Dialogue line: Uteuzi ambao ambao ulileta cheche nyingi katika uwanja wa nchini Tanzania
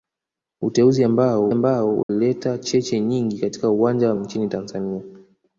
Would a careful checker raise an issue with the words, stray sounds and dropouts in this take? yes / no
yes